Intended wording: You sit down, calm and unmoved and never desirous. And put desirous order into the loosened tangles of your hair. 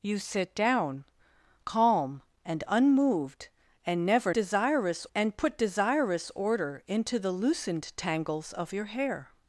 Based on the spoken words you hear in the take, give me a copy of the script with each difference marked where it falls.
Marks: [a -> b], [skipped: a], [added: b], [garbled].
You sit down, calm and unmoved and never desirous. And put desirous order into the loosened tangles of your hair.